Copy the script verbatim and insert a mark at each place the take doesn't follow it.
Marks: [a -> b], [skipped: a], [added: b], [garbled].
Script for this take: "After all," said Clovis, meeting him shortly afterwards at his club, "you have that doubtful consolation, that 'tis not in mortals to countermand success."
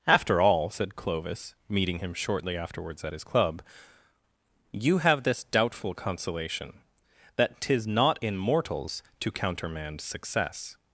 "After all," said Clovis, meeting him shortly afterwards at his club, "you have [that -> this] doubtful consolation, that 'tis not in mortals to countermand success."